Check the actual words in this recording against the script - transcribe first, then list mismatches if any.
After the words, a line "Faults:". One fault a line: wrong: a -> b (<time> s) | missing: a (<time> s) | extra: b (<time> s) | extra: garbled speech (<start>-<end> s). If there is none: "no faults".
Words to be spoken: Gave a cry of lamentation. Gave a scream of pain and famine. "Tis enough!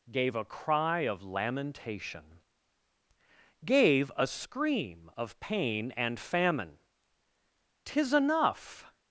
Gave a cry of lamentation. Gave a scream of pain and famine. "Tis enough!
Faults:
no faults